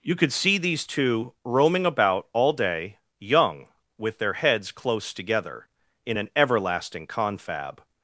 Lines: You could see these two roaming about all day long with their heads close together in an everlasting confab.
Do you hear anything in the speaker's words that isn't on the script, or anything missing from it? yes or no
yes